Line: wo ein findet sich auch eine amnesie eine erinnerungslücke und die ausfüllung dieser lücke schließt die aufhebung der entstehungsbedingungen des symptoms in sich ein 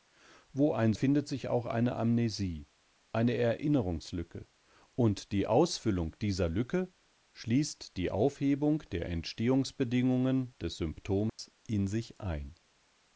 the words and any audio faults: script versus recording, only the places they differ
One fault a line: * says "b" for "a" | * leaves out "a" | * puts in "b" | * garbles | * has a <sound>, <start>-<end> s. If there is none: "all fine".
* has a dropout, 11.3-11.4 s